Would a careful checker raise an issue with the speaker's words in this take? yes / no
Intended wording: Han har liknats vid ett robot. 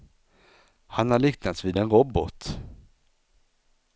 yes